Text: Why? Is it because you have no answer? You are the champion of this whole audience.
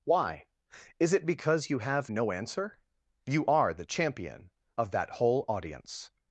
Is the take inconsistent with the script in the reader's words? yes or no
yes